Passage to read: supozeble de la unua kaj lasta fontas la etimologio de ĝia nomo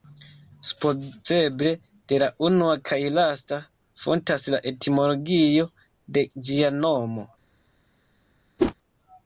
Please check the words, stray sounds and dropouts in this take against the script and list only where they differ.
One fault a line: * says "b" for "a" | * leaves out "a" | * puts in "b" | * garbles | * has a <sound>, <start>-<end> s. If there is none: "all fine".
* has a whoosh, 8.6-8.7 s